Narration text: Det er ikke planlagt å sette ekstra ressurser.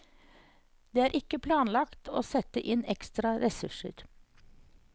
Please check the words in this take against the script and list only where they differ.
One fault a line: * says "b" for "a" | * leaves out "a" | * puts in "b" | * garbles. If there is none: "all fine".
* puts in "inn"